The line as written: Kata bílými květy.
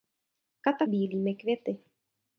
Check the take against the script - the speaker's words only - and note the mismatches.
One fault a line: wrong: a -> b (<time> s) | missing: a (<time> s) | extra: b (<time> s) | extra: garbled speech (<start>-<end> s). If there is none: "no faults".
no faults